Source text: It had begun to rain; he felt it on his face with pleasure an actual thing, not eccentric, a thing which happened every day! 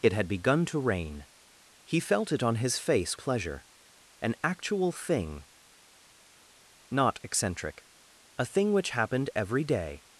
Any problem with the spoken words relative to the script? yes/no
yes